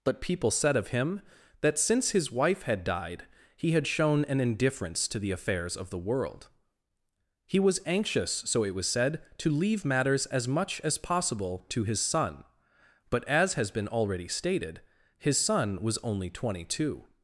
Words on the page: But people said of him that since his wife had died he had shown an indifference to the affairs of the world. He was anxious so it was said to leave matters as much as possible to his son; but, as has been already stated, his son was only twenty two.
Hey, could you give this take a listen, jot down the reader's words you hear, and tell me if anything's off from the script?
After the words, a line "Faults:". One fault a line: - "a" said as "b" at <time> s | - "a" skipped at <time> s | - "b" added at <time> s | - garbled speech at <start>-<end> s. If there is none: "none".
But people said of him that since his wife had died he had shown an indifference to the affairs of the world. He was anxious so it was said to leave matters as much as possible to his son; but, as has been already stated, his son was only twenty two.
Faults:
none